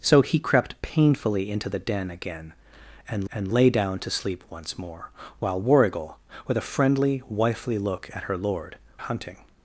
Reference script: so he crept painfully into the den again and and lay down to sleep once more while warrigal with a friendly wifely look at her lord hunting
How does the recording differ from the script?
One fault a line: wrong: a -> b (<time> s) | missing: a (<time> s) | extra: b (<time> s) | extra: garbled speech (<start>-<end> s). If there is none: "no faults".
no faults